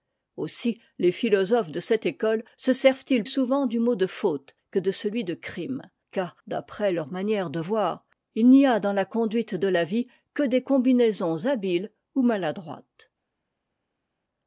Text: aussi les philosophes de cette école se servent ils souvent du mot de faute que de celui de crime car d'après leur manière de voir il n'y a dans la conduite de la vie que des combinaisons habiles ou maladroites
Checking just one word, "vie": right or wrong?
right